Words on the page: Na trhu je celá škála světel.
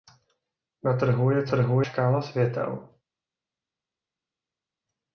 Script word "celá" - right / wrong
wrong